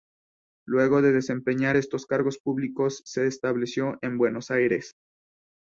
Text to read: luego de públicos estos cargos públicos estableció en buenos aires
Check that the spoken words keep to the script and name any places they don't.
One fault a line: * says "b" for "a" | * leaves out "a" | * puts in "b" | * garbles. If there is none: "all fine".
* says "desempeñar" for "públicos"
* puts in "se"